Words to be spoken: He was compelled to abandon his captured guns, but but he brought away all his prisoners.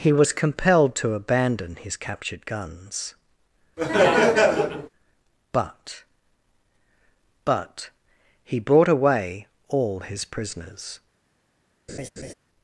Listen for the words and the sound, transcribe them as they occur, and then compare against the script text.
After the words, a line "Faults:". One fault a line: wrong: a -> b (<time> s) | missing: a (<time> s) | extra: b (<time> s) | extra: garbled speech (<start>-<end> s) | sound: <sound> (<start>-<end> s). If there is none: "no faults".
He was compelled to abandon his captured guns, but but he brought away all his prisoners.
Faults:
sound: laugh (3.8-4.9 s)
sound: laugh (11.9-12.3 s)